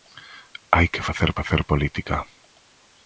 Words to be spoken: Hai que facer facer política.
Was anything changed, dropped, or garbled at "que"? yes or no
no